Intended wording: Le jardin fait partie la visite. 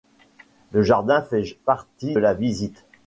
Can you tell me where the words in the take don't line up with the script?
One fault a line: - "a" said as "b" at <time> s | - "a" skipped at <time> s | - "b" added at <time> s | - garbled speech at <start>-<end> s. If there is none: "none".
none